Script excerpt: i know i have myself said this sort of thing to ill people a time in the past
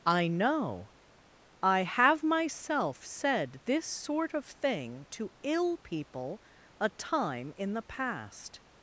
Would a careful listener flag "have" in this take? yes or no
no